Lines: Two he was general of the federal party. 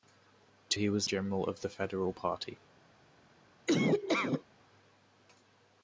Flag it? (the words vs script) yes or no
no